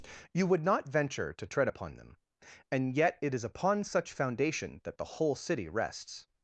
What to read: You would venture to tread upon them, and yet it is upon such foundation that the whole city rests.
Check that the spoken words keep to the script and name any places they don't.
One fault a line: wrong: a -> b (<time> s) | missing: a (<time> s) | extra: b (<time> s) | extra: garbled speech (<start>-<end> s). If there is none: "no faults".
extra: not (0.7 s)